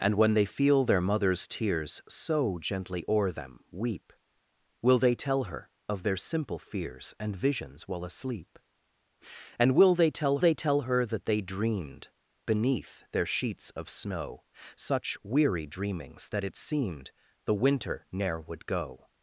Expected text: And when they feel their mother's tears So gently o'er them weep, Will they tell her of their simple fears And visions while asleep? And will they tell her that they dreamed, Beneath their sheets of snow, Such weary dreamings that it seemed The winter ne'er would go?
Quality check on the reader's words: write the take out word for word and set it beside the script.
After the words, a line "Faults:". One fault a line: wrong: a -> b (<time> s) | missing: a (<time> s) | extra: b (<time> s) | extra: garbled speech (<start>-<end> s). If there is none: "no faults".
And when they feel their mother's tears So gently o'er them weep, Will they tell her of their simple fears And visions while asleep? And will they tell they tell her that they dreamed, Beneath their sheets of snow, Such weary dreamings that it seemed The winter ne'er would go?
Faults:
extra: they tell (10.4 s)